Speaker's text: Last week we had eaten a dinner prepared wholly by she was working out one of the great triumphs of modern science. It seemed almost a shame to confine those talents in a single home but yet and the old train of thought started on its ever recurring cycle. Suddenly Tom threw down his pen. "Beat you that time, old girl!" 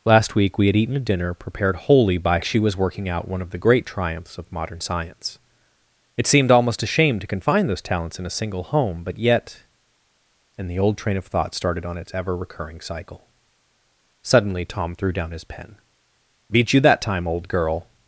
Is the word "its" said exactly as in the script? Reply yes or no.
yes